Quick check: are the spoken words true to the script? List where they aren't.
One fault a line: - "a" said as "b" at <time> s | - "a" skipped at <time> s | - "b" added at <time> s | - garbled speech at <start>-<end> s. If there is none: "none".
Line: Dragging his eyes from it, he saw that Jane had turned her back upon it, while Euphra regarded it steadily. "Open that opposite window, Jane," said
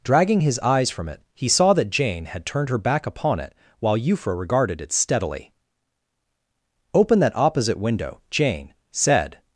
none